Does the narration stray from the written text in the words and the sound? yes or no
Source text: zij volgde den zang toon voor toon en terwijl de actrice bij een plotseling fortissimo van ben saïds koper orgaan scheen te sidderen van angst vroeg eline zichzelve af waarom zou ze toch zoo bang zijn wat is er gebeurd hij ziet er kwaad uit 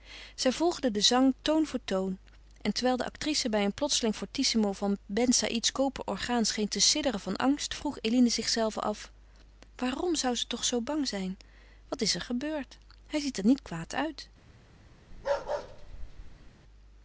yes